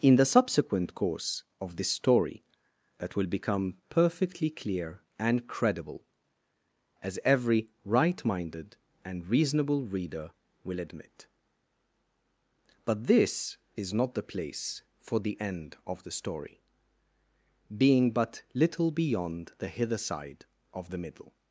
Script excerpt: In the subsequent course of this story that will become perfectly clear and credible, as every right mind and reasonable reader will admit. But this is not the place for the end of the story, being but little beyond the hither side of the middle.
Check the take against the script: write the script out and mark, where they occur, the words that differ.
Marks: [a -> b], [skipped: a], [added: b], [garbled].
In the subsequent course of this story that will become perfectly clear and credible, as every right [mind -> minded] and reasonable reader will admit. But this is not the place for the end of the story, being but little beyond the hither side of the middle.